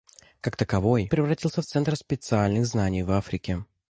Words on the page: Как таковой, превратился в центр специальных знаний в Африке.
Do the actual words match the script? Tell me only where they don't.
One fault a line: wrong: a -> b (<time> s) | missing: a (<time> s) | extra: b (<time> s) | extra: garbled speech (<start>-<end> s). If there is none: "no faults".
no faults